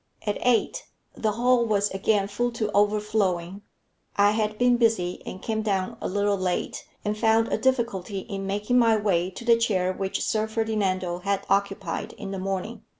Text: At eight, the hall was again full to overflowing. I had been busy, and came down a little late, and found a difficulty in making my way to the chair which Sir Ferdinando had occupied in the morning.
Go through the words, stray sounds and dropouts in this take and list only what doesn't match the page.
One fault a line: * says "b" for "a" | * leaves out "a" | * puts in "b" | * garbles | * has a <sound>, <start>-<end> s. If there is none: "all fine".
all fine